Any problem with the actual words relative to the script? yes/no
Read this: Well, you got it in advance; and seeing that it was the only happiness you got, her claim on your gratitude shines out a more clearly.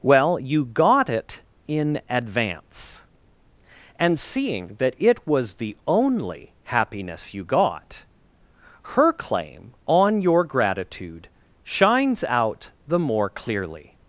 yes